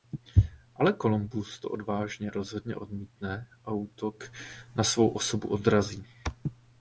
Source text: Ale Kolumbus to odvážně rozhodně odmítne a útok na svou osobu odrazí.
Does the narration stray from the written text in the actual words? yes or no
no